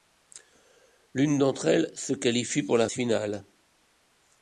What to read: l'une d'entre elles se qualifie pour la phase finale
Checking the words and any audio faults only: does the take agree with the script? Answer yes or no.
no